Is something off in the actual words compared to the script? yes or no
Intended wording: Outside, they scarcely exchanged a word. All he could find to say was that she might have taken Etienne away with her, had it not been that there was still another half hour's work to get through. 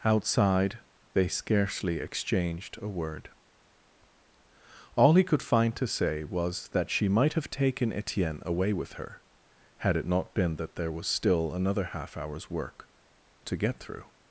no